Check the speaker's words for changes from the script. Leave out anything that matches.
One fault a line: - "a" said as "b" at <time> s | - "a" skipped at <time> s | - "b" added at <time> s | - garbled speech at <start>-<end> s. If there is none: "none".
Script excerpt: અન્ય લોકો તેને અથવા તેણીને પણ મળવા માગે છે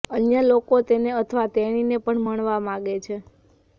none